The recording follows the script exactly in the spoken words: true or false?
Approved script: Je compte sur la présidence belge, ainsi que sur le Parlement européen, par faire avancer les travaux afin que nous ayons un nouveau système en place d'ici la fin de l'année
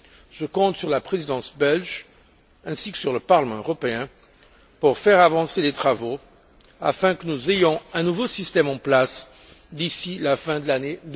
false